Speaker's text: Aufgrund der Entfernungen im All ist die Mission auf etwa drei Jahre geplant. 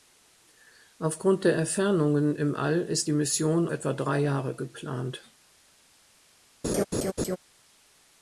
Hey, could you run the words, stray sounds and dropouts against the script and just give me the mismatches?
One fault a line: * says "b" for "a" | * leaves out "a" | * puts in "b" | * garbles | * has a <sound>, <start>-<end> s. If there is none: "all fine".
* leaves out "auf"
* has a laugh, 6.6-7.4 s